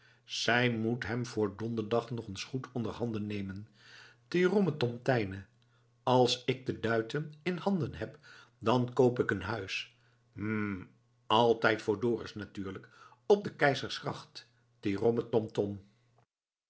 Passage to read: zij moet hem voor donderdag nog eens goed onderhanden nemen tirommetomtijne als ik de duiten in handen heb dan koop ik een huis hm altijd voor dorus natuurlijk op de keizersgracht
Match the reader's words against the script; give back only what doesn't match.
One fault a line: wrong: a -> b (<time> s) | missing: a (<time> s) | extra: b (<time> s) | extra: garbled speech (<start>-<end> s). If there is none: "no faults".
no faults